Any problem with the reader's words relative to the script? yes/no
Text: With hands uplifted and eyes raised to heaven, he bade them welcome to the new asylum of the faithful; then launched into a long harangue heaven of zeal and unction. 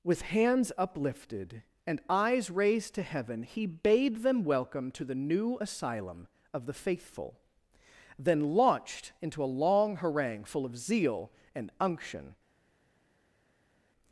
yes